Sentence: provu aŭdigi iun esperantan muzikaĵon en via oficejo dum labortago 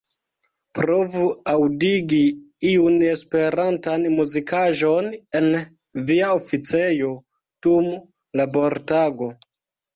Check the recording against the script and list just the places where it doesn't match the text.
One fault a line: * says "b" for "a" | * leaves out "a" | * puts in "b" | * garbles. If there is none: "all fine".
all fine